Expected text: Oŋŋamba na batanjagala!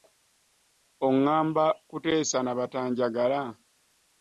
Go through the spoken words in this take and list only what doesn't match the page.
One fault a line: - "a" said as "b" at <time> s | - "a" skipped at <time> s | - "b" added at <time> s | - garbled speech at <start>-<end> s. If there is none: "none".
- "kuteesa" added at 1.9 s